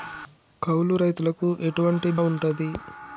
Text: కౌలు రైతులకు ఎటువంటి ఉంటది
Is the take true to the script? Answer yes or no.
yes